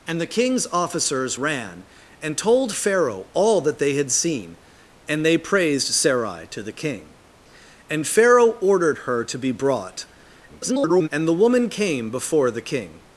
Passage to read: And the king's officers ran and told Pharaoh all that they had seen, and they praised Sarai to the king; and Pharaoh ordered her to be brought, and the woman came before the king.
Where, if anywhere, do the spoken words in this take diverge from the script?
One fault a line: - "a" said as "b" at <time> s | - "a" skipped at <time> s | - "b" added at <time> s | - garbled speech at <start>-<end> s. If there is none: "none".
- garbled speech at 10.5-11.1 s